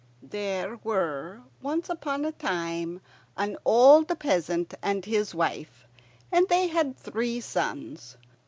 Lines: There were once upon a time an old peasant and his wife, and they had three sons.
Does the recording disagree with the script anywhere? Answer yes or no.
no